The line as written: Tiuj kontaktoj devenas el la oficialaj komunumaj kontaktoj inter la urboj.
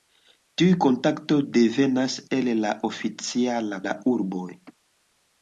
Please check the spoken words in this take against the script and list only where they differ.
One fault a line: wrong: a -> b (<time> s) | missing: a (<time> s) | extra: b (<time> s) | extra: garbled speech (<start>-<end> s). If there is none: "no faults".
missing: komunumaj kontaktoj inter (3.8 s)